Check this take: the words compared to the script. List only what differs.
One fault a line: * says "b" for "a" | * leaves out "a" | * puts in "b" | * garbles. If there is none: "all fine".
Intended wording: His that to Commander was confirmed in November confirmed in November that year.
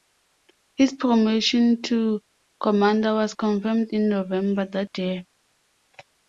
* says "promotion" for "that"
* leaves out "confirmed in November"